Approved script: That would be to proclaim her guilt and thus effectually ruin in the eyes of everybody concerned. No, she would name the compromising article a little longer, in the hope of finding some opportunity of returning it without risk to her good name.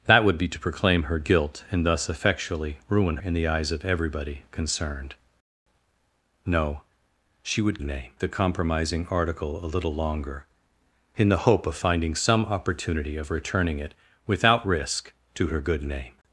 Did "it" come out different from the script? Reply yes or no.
no